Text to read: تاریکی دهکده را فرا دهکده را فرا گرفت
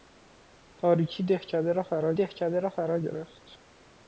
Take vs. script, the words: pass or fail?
pass